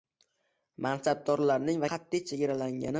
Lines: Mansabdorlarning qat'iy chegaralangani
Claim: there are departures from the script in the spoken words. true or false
false